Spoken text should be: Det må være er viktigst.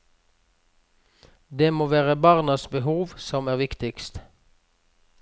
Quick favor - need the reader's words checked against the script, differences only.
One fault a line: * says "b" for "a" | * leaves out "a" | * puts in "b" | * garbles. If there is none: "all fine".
* puts in "barnas behov som"